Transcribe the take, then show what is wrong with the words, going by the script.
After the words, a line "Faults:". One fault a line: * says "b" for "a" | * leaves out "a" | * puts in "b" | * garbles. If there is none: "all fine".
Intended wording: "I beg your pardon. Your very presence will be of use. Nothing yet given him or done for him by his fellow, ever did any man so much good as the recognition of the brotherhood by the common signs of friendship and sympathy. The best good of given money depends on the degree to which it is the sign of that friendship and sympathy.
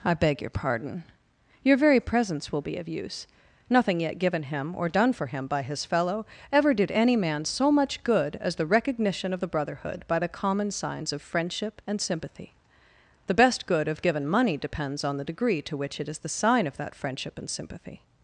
"I beg your pardon. Your very presence will be of use. Nothing yet given him or done for him by his fellow, ever did any man so much good as the recognition of the brotherhood by the common signs of friendship and sympathy. The best good of given money depends on the degree to which it is the sign of that friendship and sympathy.
Faults:
all fine